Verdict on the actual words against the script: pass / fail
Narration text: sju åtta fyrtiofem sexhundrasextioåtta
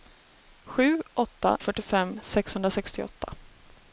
pass